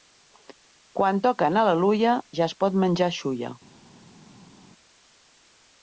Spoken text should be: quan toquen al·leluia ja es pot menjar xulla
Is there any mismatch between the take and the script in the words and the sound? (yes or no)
no